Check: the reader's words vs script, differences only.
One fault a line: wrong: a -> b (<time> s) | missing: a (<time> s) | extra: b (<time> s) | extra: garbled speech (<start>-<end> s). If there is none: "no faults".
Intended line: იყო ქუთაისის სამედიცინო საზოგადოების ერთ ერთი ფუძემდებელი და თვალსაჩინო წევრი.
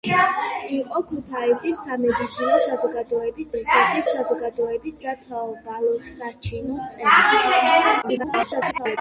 wrong: ფუძემდებელი -> საზოგადოების (4.1 s)
extra: garbled speech (8.0-9.0 s)